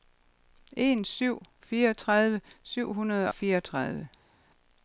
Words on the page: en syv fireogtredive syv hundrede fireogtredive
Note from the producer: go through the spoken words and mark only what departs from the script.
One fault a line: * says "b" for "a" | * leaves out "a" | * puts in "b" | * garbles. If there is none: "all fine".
all fine